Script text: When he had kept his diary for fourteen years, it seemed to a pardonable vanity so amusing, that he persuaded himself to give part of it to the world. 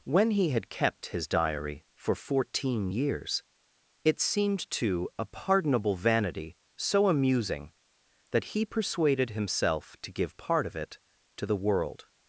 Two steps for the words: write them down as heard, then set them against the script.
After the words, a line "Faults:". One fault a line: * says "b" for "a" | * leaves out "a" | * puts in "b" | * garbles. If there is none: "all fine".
When he had kept his diary for fourteen years, it seemed to a pardonable vanity so amusing, that he persuaded himself to give part of it to the world.
Faults:
all fine